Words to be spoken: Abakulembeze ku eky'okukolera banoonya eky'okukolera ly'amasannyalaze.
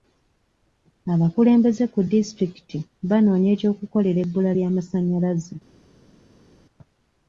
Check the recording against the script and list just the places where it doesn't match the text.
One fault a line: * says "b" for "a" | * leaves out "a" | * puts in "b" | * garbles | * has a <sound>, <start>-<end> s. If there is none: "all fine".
* says "disitulikiti" for "eky'okukolera"
* puts in "ebbula"